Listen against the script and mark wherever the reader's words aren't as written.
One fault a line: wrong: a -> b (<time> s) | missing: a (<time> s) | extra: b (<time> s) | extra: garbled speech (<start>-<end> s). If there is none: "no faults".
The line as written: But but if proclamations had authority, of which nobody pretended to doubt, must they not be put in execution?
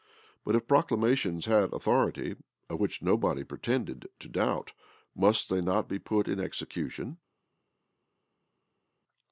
missing: but (0.6 s)